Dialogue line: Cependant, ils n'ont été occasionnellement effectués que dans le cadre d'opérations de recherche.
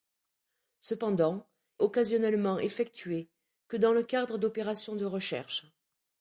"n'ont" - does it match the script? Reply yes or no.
no